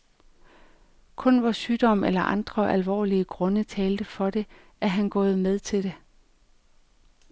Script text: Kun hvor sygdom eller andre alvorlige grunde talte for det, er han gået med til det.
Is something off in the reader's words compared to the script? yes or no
no